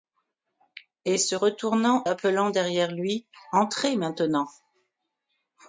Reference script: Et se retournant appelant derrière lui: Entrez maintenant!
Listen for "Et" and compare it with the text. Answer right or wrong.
right